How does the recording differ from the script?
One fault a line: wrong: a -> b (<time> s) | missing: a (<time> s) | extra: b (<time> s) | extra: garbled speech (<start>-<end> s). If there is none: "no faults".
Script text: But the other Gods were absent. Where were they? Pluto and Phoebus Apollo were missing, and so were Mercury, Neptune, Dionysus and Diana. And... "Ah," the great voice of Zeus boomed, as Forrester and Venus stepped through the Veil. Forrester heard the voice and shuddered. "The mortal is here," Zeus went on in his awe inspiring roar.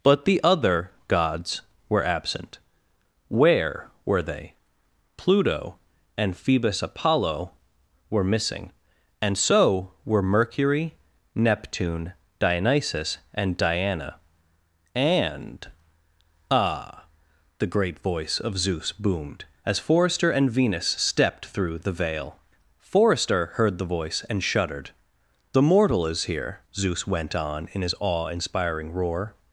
no faults